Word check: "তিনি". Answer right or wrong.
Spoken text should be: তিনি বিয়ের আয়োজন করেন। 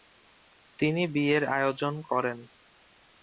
right